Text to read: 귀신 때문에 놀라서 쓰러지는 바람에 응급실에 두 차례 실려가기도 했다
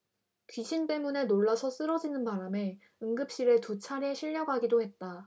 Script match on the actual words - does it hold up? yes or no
yes